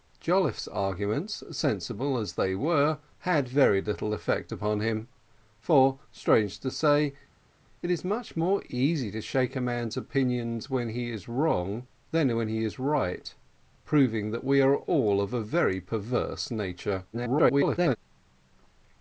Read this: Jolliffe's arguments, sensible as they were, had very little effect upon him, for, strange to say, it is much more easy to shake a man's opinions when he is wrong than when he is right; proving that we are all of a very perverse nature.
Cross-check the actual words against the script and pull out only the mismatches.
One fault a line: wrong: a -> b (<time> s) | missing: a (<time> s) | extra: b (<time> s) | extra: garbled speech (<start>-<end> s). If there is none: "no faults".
extra: garbled speech (17.1-18.0 s)